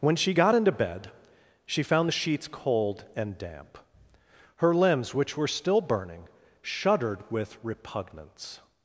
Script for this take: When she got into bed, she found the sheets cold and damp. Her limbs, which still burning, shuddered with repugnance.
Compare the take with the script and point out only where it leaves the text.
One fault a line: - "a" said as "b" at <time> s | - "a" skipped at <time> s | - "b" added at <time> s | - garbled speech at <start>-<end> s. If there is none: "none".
- "were" added at 5.4 s